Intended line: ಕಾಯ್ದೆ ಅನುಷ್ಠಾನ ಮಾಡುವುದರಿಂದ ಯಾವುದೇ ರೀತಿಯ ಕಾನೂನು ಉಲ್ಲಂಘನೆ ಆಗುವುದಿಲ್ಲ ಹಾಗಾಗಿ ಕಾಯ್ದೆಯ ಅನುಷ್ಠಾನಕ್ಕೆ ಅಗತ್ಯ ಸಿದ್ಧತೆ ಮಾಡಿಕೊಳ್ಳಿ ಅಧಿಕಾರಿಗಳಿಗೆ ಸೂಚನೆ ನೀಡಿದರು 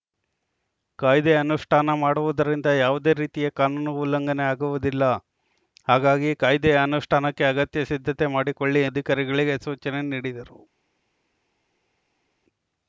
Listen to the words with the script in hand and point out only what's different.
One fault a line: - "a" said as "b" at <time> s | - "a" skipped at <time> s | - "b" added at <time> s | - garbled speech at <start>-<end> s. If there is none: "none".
none